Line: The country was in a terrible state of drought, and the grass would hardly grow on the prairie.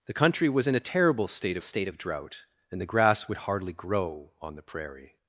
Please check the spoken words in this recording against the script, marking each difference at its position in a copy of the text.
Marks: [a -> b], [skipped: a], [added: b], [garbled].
The country was in a terrible state [added: state] of drought, and the grass would hardly grow on the prairie.